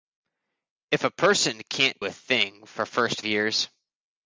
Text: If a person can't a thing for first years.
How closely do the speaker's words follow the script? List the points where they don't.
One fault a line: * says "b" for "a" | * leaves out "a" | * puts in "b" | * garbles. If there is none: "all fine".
all fine